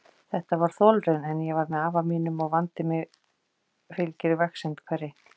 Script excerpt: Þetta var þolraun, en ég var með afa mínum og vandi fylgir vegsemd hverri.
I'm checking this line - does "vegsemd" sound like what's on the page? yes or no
yes